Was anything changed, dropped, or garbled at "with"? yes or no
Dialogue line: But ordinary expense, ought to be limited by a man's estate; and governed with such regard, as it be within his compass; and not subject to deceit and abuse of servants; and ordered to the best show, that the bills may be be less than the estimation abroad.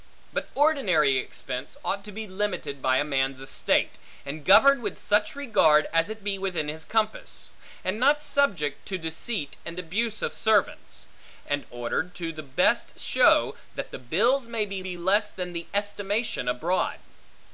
no